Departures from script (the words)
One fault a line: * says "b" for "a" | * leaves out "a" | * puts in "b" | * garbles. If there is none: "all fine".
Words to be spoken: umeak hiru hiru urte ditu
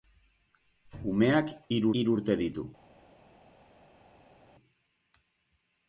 all fine